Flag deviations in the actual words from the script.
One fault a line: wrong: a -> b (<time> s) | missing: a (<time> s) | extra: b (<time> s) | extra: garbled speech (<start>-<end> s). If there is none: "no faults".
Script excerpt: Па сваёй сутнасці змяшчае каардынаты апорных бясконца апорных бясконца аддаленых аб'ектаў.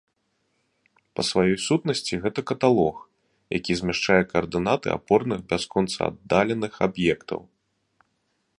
extra: гэта каталог які (2.2 s)
missing: апорных бясконца (6.0 s)